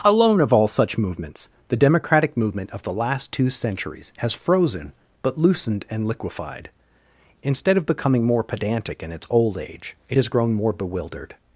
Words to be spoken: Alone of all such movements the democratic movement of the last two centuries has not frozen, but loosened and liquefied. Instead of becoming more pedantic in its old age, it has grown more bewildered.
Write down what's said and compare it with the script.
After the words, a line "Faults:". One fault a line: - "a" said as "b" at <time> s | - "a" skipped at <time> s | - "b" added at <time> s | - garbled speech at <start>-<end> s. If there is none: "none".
Alone of all such movements the democratic movement of the last two centuries has frozen, but loosened and liquefied. Instead of becoming more pedantic in its old age, it has grown more bewildered.
Faults:
- "not" skipped at 4.3 s